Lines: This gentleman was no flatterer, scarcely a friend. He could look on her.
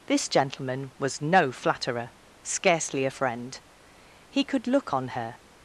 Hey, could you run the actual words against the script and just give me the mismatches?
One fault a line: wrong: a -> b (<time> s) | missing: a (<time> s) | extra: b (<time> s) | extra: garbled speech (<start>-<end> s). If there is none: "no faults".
no faults